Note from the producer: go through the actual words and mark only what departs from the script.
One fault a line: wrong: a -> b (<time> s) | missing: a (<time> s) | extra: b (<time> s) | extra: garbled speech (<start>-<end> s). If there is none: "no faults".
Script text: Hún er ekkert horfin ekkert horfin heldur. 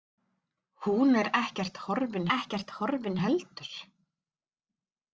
no faults